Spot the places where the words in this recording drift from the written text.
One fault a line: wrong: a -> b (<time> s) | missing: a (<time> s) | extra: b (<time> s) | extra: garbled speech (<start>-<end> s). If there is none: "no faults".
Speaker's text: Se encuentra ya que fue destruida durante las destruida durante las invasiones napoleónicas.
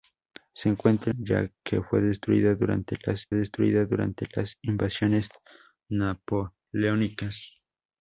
no faults